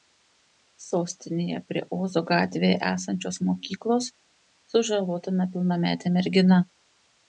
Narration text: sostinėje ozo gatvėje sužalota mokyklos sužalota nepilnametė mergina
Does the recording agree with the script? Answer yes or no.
no